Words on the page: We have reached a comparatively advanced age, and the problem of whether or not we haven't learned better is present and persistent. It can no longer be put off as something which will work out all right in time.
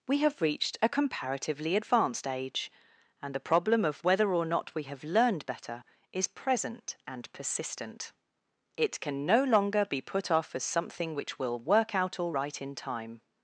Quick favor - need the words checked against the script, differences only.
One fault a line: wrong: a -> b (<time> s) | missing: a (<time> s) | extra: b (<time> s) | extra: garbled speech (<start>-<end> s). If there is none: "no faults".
wrong: haven't -> have (4.8 s)